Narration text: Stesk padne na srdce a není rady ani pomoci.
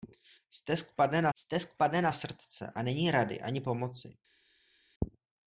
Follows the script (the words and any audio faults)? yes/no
no